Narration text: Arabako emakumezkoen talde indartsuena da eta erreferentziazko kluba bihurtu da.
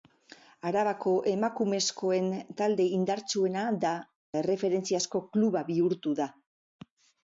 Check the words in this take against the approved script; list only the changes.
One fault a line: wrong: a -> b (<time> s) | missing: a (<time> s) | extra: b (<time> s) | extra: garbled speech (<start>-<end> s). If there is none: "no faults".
missing: eta (3.9 s)